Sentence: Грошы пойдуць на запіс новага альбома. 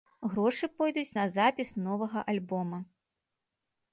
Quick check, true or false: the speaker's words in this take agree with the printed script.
true